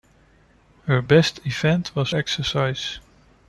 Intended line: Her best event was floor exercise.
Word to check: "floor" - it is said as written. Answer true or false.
false